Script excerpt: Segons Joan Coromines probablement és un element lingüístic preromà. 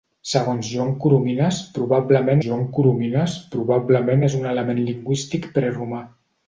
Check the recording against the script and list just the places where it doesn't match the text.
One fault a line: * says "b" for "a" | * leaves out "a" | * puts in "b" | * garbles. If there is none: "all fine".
* puts in "Joan Coromines probablement"